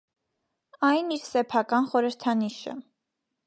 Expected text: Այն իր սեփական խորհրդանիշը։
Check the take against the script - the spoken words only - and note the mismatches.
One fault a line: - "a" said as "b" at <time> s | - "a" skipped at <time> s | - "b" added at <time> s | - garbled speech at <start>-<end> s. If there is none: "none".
none